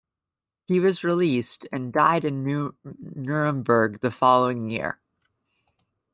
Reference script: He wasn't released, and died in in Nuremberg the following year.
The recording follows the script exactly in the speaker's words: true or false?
false